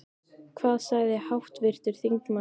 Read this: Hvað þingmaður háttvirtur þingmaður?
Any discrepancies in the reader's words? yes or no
yes